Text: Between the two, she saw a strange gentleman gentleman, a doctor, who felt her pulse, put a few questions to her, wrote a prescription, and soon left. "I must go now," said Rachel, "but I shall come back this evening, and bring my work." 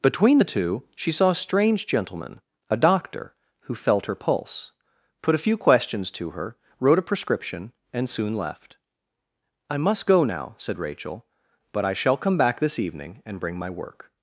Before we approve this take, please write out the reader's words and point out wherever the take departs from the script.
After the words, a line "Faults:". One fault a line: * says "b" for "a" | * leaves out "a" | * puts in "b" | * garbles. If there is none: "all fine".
Between the two, she saw a strange gentleman, a doctor, who felt her pulse, put a few questions to her, wrote a prescription, and soon left. "I must go now," said Rachel, "but I shall come back this evening, and bring my work."
Faults:
* leaves out "gentleman"